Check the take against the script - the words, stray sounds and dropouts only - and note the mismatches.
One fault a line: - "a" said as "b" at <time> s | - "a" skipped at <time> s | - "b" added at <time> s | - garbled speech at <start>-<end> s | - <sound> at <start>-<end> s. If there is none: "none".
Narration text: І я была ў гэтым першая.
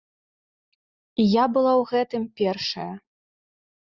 none